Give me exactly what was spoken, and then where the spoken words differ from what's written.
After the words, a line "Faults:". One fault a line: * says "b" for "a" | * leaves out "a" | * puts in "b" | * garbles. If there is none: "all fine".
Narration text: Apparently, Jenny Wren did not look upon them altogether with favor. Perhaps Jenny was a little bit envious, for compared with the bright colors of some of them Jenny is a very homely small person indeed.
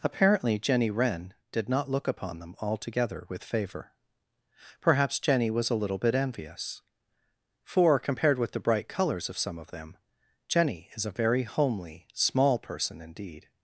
Apparently, Jenny Wren did not look upon them altogether with favor. Perhaps Jenny was a little bit envious, for compared with the bright colors of some of them Jenny is a very homely small person indeed.
Faults:
all fine